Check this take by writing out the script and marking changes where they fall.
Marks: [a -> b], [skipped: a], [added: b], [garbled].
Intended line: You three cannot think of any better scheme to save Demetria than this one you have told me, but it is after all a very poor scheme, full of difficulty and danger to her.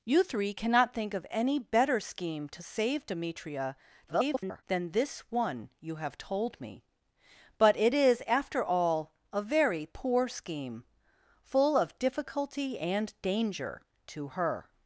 You three cannot think of any better scheme to save Demetria [garbled] than this one you have told me, but it is after all a very poor scheme, full of difficulty and danger to her.